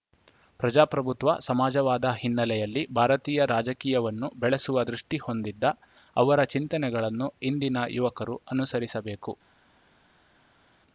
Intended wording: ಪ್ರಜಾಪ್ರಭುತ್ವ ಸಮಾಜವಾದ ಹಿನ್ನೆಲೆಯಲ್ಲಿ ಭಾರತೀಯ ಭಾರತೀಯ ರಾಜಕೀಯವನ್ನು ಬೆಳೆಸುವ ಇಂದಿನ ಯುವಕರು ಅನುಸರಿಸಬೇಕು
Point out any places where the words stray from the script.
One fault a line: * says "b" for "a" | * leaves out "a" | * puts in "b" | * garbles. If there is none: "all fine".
* leaves out "ಭಾರತೀಯ"
* puts in "ದೃಷ್ಟಿಹೊಂದಿದ್ದ ಅವರ ಚಿಂತನೆಗಳನ್ನು"